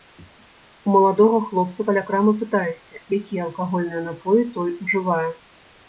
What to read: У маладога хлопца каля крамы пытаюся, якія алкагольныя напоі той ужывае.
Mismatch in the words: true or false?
false